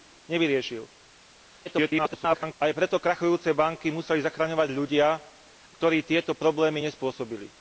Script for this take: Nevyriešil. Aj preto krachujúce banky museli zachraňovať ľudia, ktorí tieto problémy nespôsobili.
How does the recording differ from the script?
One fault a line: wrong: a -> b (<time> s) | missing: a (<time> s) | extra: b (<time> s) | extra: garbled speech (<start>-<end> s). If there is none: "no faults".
extra: garbled speech (1.6-2.5 s)